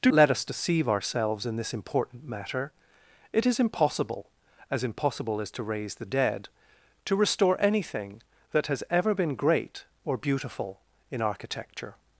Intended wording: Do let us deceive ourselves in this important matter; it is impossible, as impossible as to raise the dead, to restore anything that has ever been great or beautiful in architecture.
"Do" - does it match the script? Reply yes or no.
yes